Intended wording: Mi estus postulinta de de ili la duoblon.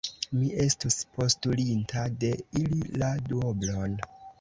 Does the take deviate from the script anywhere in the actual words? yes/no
yes